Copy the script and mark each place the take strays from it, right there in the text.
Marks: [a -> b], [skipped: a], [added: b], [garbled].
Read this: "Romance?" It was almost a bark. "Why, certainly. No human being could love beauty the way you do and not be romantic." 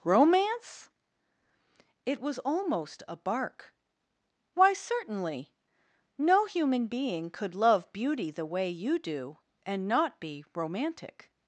"Romance?" It was almost a bark. "Why, certainly. No human being could love beauty the way you do and not be romantic."